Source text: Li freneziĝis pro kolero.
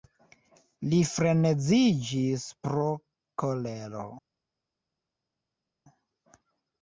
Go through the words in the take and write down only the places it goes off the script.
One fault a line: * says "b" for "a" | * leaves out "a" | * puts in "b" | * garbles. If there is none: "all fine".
all fine